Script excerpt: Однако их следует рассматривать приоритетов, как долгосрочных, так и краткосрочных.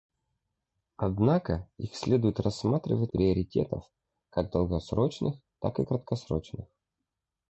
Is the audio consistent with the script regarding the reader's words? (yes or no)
yes